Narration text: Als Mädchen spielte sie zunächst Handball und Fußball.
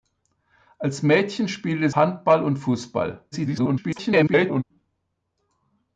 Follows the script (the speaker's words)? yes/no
no